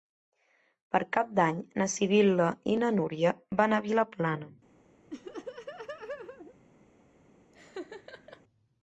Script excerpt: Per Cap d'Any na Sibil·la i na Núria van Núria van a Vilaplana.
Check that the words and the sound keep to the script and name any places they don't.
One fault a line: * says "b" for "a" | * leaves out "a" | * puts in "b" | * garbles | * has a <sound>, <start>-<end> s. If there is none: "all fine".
* leaves out "Núria van"
* has a laugh, 5.1-6.5 s
* has a laugh, 7.5-8.4 s